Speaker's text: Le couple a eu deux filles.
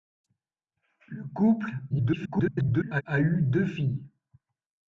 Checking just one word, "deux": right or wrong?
right